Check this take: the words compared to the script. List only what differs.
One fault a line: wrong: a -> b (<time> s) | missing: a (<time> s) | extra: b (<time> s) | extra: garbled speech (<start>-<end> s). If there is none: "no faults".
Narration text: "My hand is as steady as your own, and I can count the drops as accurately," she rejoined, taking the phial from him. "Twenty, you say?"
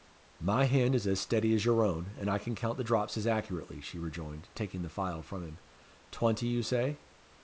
no faults